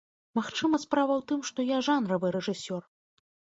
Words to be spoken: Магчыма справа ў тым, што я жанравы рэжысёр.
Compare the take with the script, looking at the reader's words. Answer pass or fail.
pass